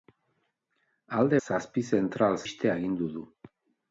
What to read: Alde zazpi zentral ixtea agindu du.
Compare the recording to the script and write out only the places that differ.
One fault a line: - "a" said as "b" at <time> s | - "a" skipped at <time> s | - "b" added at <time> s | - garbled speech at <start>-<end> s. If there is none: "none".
none